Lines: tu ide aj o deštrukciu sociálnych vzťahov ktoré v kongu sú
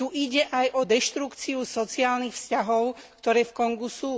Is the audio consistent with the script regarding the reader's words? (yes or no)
yes